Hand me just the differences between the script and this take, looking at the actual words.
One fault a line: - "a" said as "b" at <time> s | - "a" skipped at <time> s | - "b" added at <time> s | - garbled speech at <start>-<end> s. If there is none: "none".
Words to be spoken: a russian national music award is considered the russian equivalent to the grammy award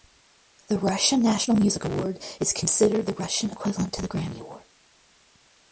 - "a" said as "the" at 0.7 s